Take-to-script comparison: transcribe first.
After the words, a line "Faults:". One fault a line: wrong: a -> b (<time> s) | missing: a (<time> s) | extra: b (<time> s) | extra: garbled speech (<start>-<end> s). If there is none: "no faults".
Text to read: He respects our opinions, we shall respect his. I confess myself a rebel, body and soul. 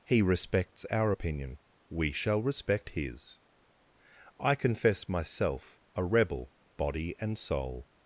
He respects our opinion, we shall respect his. I confess myself a rebel, body and soul.
Faults:
wrong: opinions -> opinion (1.1 s)